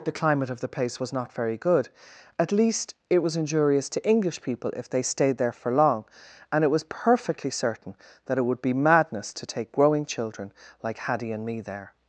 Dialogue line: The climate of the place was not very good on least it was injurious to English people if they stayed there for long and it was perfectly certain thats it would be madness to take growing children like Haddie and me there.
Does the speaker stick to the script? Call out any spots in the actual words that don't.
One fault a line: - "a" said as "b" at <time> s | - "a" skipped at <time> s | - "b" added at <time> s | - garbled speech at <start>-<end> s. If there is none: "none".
- "on" said as "at" at 2.4 s
- "thats" said as "that" at 8.3 s